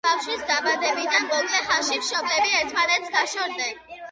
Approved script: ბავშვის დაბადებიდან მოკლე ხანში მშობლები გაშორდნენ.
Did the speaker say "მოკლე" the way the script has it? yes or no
yes